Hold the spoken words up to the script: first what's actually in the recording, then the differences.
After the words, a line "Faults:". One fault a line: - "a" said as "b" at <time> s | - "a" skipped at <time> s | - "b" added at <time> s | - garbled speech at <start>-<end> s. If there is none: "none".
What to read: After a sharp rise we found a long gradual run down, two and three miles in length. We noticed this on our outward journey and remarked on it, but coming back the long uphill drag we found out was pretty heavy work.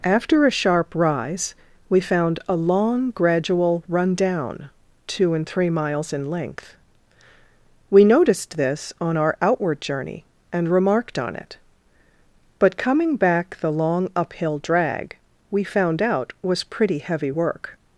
After a sharp rise we found a long gradual run down, two and three miles in length. We noticed this on our outward journey and remarked on it, but coming back the long uphill drag we found out was pretty heavy work.
Faults:
none